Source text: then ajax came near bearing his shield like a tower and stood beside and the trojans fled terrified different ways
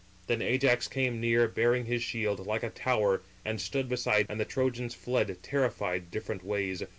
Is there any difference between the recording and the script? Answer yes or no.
no